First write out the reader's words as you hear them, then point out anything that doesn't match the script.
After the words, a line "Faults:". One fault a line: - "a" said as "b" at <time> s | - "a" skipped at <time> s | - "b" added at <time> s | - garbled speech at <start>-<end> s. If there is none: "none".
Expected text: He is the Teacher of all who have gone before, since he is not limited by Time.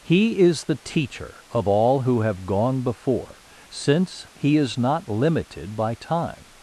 He is the Teacher of all who have gone before, since he is not limited by Time.
Faults:
none